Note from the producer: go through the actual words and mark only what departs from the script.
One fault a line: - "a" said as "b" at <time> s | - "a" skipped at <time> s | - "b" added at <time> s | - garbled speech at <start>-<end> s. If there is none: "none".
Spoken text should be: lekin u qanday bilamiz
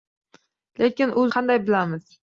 none